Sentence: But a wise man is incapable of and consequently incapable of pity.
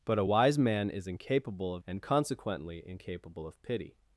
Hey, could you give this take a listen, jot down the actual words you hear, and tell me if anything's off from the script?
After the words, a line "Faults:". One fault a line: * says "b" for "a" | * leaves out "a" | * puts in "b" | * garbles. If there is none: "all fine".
But a wise man is incapable of and consequently incapable of pity.
Faults:
all fine